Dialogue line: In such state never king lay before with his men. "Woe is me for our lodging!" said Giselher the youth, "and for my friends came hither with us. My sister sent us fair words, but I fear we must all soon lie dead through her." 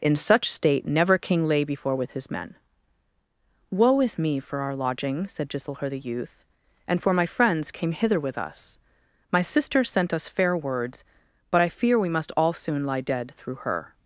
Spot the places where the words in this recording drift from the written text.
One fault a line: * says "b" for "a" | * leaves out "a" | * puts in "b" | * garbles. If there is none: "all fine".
all fine